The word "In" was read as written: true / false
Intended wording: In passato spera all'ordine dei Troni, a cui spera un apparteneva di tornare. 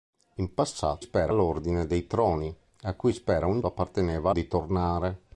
true